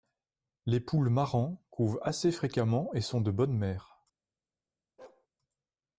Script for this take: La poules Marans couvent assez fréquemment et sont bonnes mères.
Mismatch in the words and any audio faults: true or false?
true